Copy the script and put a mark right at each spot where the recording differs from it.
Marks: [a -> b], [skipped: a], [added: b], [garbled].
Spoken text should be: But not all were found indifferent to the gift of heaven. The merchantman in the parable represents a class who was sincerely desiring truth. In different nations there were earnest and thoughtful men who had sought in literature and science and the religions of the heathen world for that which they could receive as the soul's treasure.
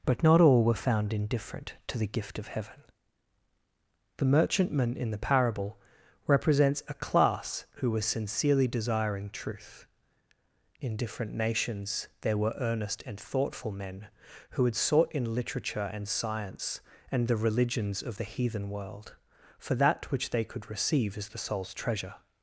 But not all were found indifferent to the gift of heaven. The merchantman in the parable represents a class who was sincerely desiring truth. In different nations there were earnest and thoughtful men who had sought in literature and science and the religions of the heathen world for that which they could receive as the soul's treasure.